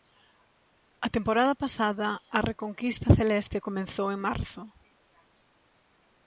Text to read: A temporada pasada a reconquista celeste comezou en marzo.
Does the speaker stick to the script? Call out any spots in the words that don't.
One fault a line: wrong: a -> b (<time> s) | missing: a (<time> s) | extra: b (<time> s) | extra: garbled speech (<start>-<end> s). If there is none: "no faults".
no faults